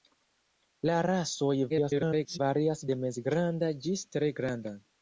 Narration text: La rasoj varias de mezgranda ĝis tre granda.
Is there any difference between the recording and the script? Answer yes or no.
yes